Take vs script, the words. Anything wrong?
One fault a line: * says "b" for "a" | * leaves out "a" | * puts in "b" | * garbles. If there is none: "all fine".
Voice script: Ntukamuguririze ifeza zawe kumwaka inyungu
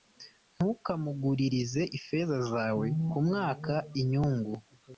all fine